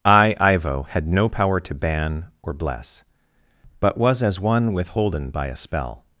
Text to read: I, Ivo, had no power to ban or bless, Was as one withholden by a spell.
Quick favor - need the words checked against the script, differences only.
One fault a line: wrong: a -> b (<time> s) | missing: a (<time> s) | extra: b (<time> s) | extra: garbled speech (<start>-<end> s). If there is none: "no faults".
extra: But (3.8 s)